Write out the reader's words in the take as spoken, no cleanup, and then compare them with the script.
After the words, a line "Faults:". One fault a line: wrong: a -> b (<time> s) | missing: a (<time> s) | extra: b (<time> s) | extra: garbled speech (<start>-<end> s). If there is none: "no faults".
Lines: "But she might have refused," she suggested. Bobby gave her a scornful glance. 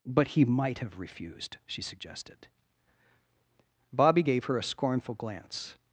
"But he might have refused," she suggested. Bobby gave her a scornful glance.
Faults:
wrong: she -> he (0.3 s)